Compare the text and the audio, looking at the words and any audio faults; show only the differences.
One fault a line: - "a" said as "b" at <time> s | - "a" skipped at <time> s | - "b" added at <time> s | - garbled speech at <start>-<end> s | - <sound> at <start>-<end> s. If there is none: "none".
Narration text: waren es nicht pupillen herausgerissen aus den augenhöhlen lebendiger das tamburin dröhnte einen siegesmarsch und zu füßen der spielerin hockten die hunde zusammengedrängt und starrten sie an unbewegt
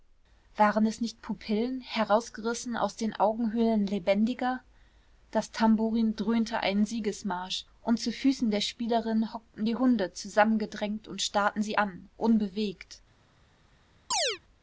- chirp at 14.1-14.4 s